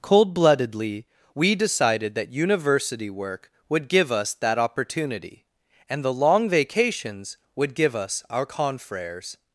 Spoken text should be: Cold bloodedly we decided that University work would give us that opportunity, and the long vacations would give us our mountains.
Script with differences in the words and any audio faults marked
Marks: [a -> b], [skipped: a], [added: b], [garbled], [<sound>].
Cold bloodedly we decided that University work would give us that opportunity, and the long vacations would give us our [mountains. -> confreres]